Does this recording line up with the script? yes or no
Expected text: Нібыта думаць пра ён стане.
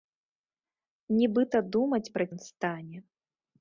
yes